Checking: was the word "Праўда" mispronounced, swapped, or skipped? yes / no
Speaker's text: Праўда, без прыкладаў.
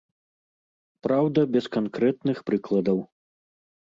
no